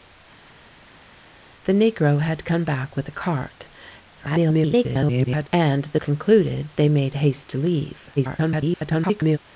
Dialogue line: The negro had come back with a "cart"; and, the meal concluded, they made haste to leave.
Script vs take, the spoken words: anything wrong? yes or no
yes